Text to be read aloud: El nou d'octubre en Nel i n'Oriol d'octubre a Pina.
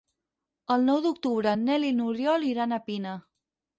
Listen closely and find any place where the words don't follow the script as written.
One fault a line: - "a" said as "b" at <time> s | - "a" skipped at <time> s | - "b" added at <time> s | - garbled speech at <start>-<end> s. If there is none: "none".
- "d'octubre" said as "iran" at 2.5 s